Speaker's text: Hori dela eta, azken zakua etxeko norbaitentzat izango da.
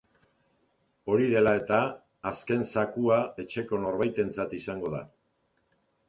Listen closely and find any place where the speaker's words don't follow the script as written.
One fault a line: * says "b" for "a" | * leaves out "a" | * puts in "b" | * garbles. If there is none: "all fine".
all fine